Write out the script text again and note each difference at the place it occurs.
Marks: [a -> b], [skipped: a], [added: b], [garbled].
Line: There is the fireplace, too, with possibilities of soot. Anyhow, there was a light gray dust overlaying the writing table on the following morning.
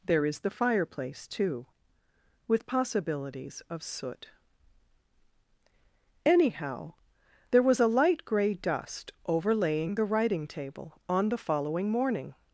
There is the fireplace, too, with possibilities of soot. Anyhow, there was a light gray dust overlaying the writing table on the following morning.